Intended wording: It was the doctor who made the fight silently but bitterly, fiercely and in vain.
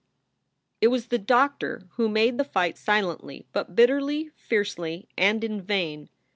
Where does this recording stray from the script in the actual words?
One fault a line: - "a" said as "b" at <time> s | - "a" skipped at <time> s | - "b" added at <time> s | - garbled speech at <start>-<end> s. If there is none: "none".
none